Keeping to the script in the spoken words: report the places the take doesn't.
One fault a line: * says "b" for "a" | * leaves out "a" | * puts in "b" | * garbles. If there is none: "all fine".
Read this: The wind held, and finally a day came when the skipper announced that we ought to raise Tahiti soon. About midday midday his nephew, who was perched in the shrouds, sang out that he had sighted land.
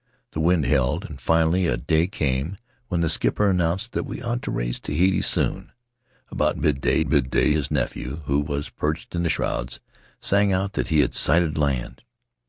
all fine